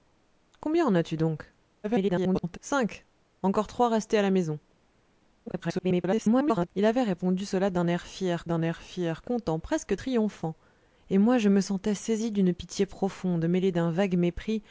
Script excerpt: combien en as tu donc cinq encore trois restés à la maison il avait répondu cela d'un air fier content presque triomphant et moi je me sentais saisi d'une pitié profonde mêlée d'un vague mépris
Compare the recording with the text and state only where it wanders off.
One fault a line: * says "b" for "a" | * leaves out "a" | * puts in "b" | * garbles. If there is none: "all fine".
* garbles
* garbles
* puts in "d'un air fier"